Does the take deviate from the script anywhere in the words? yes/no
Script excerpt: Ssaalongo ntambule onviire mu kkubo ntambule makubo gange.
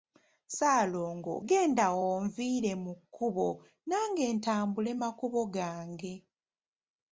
yes